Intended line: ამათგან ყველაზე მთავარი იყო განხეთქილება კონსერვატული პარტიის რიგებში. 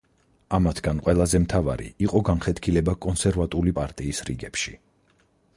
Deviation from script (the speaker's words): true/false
false